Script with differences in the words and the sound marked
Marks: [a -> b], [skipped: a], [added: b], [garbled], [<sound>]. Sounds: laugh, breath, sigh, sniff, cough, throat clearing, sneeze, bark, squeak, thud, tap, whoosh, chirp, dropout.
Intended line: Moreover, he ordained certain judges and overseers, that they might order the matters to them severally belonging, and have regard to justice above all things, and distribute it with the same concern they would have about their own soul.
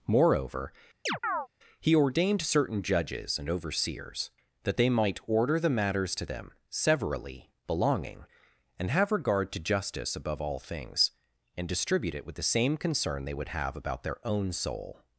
Moreover, [chirp] he ordained certain judges and overseers, that they might order the matters to them severally belonging, and have regard to justice above all things, and distribute it with the same concern they would have about their own soul.